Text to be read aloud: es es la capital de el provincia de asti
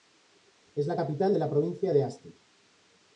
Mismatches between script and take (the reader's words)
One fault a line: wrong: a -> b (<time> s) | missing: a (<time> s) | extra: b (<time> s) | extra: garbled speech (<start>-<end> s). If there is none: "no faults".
missing: es (0.9 s)
wrong: el -> la (1.4 s)